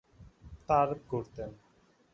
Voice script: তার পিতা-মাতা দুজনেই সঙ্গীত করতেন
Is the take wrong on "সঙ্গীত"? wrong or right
wrong